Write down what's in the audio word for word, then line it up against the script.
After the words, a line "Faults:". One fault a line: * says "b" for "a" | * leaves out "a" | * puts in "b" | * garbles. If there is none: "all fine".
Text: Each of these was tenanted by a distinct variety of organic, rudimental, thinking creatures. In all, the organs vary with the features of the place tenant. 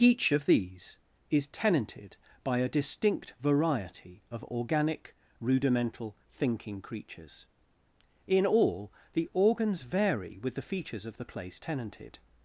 Each of these is tenanted by a distinct variety of organic, rudimental, thinking creatures. In all, the organs vary with the features of the place tenanted.
Faults:
* says "is" for "was"
* says "tenanted" for "tenant"